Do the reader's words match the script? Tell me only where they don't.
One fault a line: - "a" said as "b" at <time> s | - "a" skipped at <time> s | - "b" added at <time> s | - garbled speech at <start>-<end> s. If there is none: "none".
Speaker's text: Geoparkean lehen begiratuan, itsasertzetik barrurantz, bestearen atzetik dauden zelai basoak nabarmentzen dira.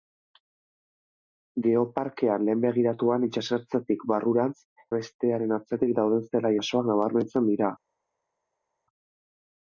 none